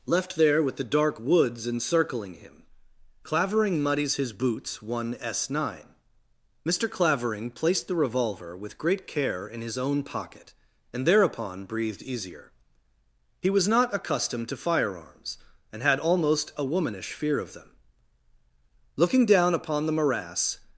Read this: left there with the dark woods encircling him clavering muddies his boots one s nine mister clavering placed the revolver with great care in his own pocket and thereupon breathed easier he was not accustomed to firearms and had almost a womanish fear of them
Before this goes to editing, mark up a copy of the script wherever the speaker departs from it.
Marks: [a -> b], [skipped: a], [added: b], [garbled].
left there with the dark woods encircling him clavering muddies his boots one s nine mister clavering placed the revolver with great care in his own pocket and thereupon breathed easier he was not accustomed to firearms and had almost a womanish fear of them [added: looking down upon the morass]